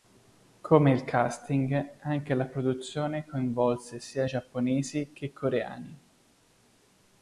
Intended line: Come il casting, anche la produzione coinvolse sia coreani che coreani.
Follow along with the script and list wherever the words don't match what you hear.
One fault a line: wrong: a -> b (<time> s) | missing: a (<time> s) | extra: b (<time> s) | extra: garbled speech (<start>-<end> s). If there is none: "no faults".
wrong: coreani -> giapponesi (4.2 s)